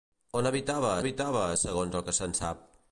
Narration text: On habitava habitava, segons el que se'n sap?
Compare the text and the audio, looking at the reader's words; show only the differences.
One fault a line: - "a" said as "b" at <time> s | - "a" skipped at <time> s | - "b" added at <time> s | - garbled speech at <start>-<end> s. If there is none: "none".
none